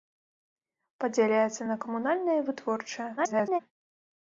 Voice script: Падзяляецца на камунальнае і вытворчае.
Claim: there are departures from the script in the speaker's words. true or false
true